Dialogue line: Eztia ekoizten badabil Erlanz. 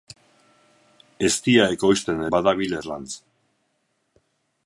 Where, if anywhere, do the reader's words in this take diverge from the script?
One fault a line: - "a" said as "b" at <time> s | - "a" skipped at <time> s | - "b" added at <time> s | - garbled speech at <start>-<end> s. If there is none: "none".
none